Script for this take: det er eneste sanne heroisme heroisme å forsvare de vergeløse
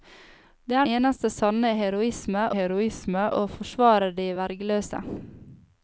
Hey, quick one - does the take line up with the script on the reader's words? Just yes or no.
yes